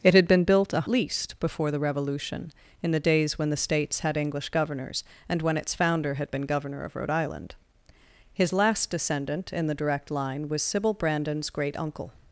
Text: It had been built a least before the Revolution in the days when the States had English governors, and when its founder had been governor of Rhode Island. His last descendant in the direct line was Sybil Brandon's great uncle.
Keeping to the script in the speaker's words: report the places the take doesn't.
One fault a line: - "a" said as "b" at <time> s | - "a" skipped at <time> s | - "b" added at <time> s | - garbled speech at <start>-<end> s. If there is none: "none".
none